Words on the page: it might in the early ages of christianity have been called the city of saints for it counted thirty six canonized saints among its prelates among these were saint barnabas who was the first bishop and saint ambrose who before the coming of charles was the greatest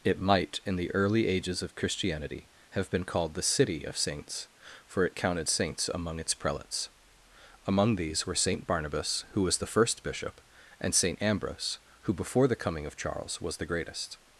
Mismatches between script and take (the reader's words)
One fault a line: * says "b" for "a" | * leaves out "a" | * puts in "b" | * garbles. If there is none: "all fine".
* leaves out "thirty six canonized"